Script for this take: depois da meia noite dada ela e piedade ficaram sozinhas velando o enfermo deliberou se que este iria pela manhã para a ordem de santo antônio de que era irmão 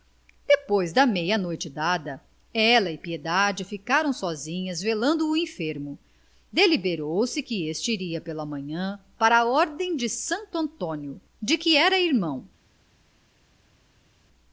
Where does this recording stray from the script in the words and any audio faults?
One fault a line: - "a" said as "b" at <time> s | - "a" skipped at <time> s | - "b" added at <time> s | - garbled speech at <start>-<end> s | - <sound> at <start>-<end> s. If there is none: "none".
none